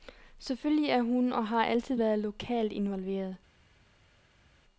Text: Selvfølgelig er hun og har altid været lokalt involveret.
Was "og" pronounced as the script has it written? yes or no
yes